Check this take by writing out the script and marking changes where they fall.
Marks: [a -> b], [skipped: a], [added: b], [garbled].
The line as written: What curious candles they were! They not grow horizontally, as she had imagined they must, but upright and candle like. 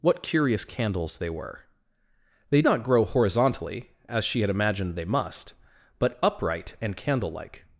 What curious candles they were! They not grow horizontally, as she had imagined they must, but upright and candle like.